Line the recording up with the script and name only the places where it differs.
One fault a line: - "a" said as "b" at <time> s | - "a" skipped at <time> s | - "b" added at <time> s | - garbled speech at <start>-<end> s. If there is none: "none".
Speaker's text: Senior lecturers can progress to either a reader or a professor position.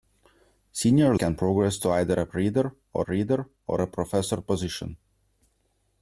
- "lecturers" skipped at 1.1 s
- "reader or" added at 3.0 s